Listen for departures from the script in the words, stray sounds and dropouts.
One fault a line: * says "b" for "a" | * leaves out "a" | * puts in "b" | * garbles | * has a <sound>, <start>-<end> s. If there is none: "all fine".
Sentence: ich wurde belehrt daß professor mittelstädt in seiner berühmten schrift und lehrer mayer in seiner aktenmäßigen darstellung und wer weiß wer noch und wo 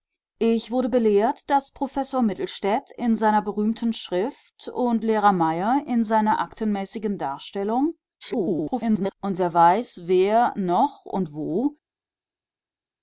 * garbles